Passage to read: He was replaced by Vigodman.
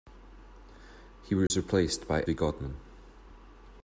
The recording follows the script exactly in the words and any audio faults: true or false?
false